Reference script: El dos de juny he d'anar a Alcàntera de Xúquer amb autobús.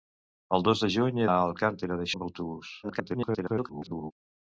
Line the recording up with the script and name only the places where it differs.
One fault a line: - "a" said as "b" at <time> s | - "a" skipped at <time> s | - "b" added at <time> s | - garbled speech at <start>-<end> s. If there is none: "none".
- "d'anar" skipped at 1.3 s
- "Xúquer" skipped at 2.1 s
- garbled speech at 2.8-4.1 s